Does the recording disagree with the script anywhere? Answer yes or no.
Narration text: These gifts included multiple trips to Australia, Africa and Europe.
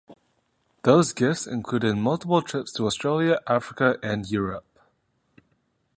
yes